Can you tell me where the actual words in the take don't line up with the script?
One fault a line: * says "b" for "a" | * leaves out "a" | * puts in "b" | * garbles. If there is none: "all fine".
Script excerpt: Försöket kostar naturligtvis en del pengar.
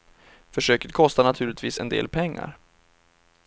all fine